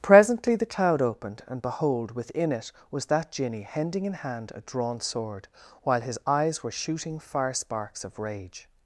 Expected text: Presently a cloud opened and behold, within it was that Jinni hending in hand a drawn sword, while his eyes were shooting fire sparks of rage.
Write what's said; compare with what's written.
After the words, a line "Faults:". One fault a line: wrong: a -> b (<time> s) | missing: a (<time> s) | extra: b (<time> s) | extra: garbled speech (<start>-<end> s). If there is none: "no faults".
Presently the cloud opened and behold, within it was that Jinni hending in hand a drawn sword, while his eyes were shooting fire sparks of rage.
Faults:
wrong: a -> the (0.6 s)